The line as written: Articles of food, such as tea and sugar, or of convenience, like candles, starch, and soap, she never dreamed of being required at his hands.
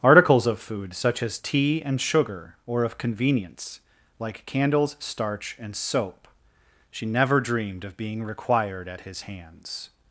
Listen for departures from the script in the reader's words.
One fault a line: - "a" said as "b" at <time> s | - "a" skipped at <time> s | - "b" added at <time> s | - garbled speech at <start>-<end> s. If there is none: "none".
none